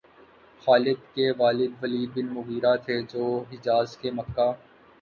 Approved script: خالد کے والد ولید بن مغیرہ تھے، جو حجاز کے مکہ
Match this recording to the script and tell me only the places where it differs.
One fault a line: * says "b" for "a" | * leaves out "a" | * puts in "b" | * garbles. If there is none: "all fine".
all fine